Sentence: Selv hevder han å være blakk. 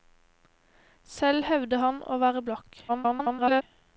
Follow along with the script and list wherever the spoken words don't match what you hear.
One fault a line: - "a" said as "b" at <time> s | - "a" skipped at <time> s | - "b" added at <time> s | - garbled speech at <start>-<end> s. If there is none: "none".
- garbled speech at 2.9-3.6 s